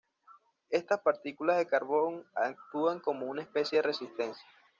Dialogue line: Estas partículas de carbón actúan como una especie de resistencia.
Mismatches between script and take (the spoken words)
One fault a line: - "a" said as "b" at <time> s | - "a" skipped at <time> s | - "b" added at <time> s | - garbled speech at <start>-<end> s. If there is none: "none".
none